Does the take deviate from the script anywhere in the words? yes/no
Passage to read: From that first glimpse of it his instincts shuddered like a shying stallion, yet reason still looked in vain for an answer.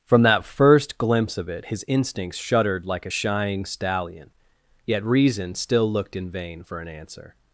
no